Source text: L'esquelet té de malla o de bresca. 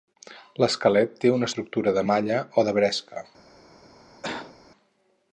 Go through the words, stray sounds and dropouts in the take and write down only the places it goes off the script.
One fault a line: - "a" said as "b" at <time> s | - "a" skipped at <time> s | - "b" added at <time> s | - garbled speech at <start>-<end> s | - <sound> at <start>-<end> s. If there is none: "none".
- "una estructura" added at 1.4 s
- cough at 4.2-4.6 s